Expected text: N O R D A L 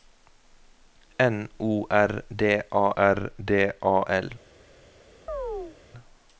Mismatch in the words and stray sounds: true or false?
true